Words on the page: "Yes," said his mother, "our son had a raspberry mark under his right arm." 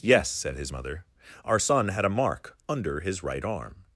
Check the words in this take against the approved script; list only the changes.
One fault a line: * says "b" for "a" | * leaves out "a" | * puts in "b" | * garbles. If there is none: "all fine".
* leaves out "raspberry"